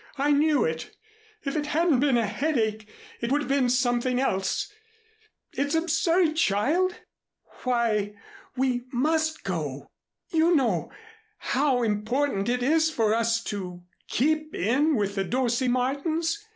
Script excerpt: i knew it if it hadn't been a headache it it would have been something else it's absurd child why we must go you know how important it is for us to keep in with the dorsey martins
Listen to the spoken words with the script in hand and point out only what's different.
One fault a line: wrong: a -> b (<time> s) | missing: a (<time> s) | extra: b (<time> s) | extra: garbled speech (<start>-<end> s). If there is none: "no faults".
missing: it (3.3 s)